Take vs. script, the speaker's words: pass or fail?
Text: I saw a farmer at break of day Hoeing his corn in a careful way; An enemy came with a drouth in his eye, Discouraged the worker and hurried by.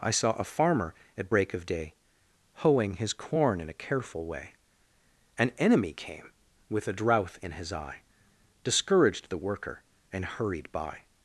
pass